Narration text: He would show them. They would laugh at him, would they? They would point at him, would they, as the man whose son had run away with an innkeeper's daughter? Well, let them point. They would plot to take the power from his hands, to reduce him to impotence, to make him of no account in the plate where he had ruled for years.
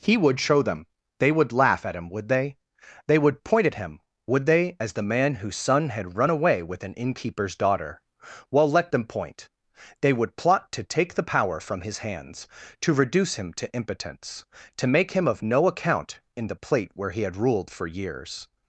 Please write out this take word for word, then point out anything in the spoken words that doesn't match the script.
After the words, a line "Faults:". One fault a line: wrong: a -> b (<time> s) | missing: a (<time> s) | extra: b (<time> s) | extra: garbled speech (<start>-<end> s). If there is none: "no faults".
He would show them. They would laugh at him, would they? They would point at him, would they, as the man whose son had run away with an innkeeper's daughter? Well, let them point. They would plot to take the power from his hands, to reduce him to impotence, to make him of no account in the plate where he had ruled for years.
Faults:
no faults